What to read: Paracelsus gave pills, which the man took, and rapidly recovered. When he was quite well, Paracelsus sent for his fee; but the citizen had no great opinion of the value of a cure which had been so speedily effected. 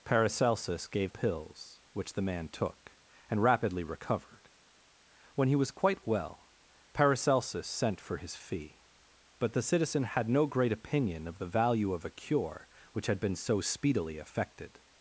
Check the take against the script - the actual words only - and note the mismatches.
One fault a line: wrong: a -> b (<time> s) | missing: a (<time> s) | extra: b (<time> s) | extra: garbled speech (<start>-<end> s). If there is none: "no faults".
no faults